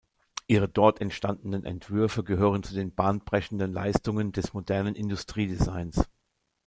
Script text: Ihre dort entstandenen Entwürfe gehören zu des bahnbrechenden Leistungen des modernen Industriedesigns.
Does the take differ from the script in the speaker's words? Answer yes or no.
yes